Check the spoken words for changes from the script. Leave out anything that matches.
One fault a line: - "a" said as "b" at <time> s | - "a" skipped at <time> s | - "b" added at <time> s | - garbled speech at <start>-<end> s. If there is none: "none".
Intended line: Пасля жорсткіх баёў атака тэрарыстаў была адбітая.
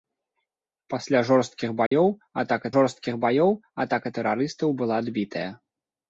- "жорсткіх баёў атака" added at 2.7 s